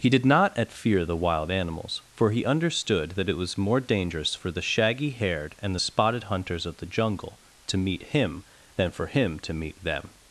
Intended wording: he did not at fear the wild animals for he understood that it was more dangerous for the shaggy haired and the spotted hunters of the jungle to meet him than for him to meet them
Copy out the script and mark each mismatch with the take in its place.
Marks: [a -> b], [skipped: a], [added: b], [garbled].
he did not at fear the wild animals for he understood that it was more dangerous for the shaggy haired and the spotted hunters of the jungle to meet him than for him to meet them